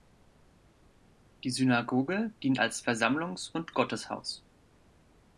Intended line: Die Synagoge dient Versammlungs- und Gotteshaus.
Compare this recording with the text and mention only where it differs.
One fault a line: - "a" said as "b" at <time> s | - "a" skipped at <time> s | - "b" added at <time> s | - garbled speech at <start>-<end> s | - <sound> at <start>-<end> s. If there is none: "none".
- "als" added at 2.6 s